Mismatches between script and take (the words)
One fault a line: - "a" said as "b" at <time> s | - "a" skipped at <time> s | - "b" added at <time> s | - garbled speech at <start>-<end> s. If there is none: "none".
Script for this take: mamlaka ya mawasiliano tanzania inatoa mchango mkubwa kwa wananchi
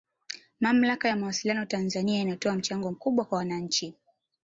none